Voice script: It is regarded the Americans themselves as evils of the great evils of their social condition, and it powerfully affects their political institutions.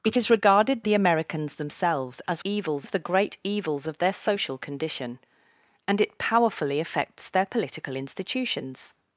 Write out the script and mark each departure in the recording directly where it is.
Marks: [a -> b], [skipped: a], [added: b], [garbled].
It is regarded the Americans themselves as evils of the great evils of their social condition, and it powerfully affects their political institutions.